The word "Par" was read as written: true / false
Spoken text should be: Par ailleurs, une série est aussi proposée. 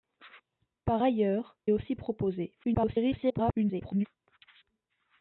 true